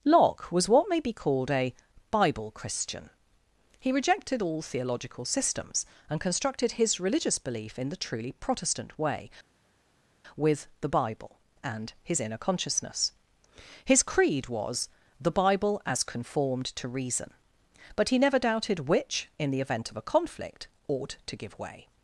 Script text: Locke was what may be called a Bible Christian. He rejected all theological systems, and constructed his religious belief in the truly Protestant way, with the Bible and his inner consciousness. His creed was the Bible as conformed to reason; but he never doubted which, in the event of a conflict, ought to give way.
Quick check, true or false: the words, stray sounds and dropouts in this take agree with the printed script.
true